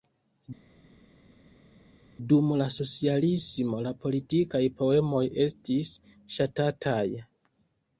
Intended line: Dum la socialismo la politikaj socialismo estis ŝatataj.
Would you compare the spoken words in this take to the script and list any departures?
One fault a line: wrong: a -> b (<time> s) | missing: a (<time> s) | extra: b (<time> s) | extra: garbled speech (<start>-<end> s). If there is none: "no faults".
wrong: socialismo -> poemoj (4.8 s)